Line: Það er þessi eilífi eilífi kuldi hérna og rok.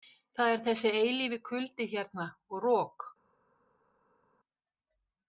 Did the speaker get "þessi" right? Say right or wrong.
right